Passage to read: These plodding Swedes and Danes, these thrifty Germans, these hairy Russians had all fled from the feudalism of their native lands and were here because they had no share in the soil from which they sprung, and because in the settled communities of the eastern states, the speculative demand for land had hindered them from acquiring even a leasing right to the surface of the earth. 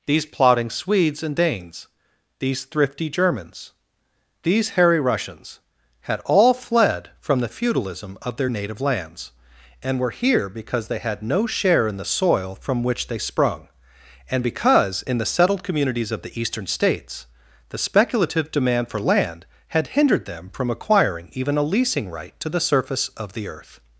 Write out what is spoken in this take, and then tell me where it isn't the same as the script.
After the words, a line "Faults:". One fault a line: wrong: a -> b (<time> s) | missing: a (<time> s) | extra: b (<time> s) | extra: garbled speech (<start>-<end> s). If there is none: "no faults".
These plodding Swedes and Danes, these thrifty Germans, these hairy Russians had all fled from the feudalism of their native lands and were here because they had no share in the soil from which they sprung, and because in the settled communities of the eastern states, the speculative demand for land had hindered them from acquiring even a leasing right to the surface of the earth.
Faults:
no faults